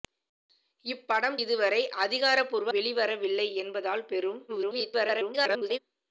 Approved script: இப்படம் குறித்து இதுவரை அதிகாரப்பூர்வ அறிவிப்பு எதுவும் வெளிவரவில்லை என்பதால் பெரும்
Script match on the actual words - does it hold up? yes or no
no